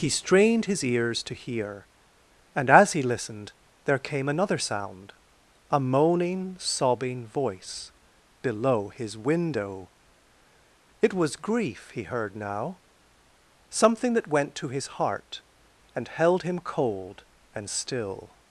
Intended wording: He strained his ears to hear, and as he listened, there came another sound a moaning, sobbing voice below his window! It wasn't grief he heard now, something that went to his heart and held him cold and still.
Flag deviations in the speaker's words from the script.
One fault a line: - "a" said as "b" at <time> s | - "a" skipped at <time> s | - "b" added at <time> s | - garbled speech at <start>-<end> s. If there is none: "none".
- "wasn't" said as "was" at 11.1 s